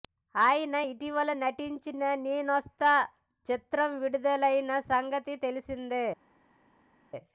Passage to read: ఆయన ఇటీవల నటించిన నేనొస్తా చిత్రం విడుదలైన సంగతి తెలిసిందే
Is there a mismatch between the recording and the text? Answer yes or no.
no